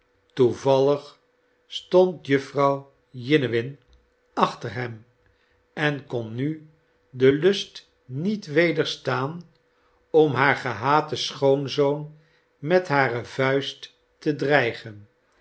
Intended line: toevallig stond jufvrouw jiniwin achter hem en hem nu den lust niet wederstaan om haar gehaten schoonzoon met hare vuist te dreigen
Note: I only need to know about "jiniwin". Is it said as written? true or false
true